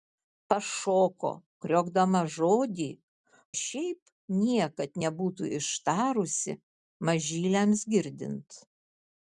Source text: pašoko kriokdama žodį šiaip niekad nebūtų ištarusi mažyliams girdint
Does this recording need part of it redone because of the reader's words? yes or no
no